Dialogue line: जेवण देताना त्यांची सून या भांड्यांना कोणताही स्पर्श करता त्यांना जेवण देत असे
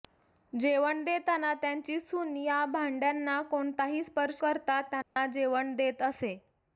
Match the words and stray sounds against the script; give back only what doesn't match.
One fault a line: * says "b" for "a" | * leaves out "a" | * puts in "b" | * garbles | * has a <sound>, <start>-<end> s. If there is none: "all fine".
* has a dropout, 5.0-5.2 s